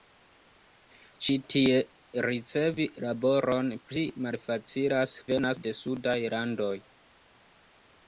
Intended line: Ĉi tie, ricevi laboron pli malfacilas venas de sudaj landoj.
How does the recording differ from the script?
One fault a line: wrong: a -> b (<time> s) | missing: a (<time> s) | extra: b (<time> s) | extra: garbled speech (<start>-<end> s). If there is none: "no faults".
no faults